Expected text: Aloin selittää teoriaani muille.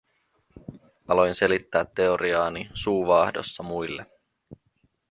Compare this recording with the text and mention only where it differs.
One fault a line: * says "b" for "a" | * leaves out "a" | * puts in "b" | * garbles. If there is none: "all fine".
* puts in "suu vaahdossa"